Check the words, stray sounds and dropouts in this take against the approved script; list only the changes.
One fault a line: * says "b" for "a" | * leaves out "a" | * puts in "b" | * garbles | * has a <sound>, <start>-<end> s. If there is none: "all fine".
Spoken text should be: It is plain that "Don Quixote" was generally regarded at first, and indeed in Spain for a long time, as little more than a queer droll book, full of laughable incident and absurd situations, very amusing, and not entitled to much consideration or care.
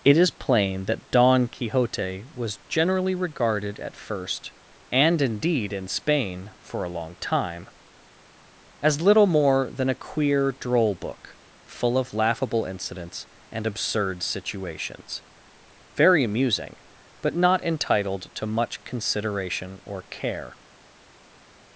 * says "incidents" for "incident"
* says "but" for "and"